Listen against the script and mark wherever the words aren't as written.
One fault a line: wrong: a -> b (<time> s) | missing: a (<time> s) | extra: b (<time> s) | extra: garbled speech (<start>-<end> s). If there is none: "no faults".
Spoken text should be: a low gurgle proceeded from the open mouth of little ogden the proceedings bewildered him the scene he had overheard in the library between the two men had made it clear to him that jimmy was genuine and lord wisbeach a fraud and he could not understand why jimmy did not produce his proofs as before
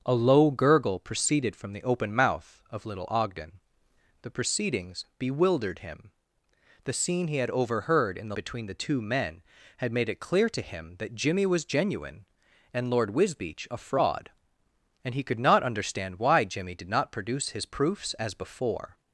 missing: library (8.4 s)